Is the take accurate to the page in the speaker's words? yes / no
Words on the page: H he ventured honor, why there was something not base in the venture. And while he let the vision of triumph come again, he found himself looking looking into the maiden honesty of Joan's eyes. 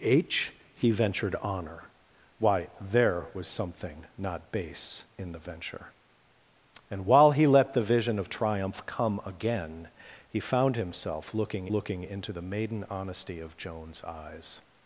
yes